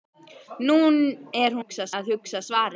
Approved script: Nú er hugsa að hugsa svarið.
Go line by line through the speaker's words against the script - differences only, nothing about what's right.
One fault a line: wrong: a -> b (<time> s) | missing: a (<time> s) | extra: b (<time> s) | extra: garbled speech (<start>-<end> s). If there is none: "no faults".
no faults